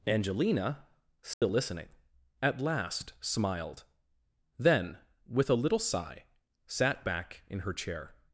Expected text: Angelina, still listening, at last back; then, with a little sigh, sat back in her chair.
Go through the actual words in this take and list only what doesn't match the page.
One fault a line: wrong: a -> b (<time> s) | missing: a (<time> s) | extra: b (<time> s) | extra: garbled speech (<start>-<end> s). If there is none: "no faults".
wrong: back -> smiled (3.2 s)